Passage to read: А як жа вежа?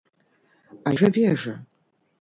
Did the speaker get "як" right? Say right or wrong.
wrong